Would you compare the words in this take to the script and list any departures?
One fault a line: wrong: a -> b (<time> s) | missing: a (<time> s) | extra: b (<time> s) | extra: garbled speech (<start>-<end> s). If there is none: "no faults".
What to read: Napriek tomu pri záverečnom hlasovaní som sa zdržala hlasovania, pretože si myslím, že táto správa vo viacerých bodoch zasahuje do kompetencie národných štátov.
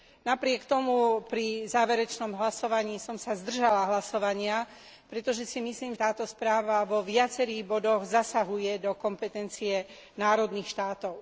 missing: že (6.0 s)